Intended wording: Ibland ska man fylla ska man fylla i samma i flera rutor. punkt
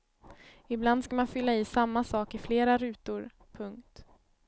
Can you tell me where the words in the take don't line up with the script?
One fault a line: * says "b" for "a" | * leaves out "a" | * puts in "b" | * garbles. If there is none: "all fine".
* leaves out "ska man fylla"
* puts in "sak"